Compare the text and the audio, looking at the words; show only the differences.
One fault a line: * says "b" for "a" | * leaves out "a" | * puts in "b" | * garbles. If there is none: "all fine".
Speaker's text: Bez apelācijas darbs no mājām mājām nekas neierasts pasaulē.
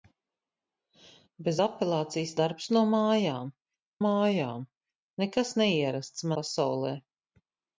all fine